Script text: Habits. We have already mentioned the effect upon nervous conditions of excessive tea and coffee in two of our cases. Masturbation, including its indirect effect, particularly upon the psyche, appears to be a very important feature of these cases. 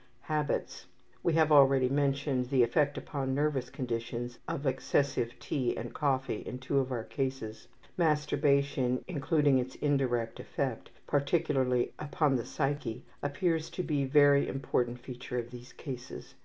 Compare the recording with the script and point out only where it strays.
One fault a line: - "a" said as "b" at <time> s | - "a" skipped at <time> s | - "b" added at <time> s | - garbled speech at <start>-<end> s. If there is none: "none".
none